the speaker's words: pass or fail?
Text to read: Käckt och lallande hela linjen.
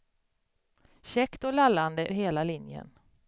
pass